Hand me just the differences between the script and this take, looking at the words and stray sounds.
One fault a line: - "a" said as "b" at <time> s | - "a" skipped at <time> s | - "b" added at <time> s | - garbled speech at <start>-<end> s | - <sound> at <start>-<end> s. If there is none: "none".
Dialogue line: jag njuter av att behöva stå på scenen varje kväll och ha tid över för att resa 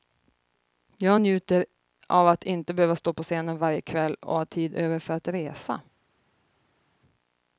- "inte" added at 2.4 s